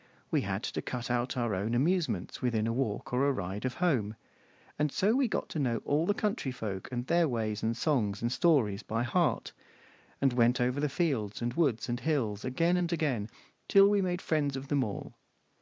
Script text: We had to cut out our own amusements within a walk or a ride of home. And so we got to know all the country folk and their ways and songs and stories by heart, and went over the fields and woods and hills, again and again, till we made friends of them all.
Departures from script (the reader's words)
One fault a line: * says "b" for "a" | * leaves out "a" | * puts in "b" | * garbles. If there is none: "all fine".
all fine